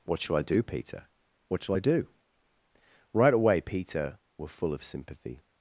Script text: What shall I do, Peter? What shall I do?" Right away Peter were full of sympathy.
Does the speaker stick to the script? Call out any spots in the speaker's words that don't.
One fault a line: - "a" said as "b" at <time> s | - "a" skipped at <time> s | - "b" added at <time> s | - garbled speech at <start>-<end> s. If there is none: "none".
none